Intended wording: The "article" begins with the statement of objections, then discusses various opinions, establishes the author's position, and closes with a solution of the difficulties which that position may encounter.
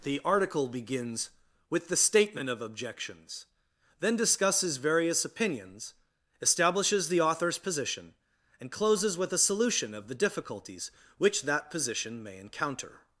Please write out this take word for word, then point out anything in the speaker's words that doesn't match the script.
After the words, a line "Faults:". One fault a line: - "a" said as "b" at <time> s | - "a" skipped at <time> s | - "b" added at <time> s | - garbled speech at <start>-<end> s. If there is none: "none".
The "article" begins with the statement of objections, then discusses various opinions, establishes the author's position, and closes with a solution of the difficulties which that position may encounter.
Faults:
none